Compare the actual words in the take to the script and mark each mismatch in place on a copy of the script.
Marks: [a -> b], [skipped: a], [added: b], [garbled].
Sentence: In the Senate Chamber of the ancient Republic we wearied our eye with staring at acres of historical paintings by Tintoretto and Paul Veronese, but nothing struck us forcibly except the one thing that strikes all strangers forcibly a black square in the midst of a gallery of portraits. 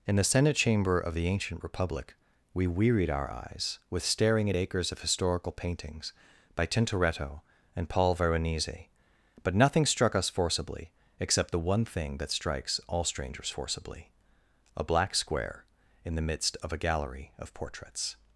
In the Senate Chamber of the ancient Republic we wearied our [eye -> eyes] with staring at acres of historical paintings by Tintoretto and Paul Veronese, but nothing struck us forcibly except the one thing that strikes all strangers forcibly a black square in the midst of a gallery of portraits.